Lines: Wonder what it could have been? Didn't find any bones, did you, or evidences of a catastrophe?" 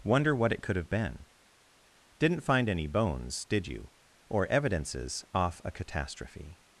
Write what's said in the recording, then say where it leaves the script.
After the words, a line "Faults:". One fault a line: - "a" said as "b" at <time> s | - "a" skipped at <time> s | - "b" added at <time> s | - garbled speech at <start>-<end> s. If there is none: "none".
Wonder what it could have been? Didn't find any bones, did you, or evidences off a catastrophe?"
Faults:
- "of" said as "off" at 5.3 s